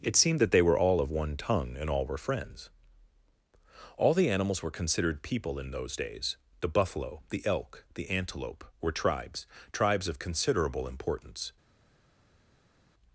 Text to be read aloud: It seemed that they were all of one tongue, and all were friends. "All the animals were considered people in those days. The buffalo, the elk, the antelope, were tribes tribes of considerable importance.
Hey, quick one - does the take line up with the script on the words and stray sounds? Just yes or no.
yes